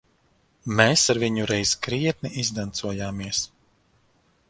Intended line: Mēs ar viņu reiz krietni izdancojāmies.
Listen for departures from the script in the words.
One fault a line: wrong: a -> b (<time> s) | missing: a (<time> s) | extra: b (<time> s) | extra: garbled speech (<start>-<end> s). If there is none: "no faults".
no faults